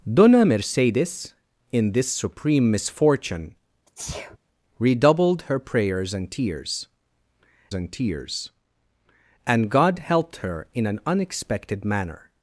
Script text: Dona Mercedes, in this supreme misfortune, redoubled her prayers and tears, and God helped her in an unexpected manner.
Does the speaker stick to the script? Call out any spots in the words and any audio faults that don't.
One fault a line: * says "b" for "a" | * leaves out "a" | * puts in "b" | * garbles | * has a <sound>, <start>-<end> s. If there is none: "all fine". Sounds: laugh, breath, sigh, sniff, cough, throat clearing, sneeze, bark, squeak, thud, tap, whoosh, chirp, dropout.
* has a sneeze, 3.9-4.4 s
* puts in "tears and"